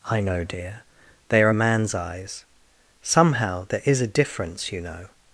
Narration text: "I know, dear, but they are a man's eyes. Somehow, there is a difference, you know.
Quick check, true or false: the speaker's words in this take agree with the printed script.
false